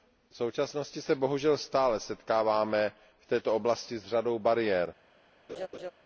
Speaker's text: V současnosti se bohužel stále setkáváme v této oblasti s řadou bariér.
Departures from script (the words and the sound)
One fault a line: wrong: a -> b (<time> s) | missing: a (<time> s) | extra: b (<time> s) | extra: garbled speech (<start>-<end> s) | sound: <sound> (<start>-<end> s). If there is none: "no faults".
sound: laugh (5.5-5.9 s)